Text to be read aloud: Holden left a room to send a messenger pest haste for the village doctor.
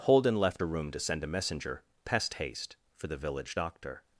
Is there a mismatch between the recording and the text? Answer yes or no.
no